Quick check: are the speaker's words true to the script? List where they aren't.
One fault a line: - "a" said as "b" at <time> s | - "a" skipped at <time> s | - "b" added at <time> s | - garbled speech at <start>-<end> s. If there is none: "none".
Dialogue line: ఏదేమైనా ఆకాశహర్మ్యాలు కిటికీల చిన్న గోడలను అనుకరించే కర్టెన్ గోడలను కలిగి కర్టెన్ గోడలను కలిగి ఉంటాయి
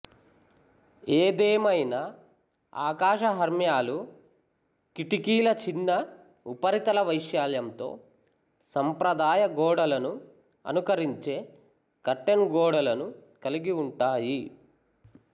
- "గోడలను అనుకరించే కర్టెన్" said as "ఉపరితల వైశాల్యంతో సంప్రదాయ" at 6.5 s
- "కలిగి" said as "అనుకరించే" at 10.6 s